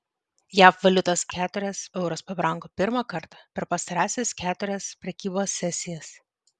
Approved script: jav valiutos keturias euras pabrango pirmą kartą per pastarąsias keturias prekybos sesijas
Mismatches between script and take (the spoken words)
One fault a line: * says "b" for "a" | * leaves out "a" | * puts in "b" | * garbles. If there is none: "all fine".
all fine